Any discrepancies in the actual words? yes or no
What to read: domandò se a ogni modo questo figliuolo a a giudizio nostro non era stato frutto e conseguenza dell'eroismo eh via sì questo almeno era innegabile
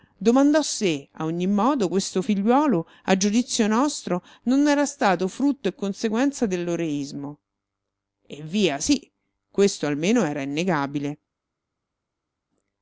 yes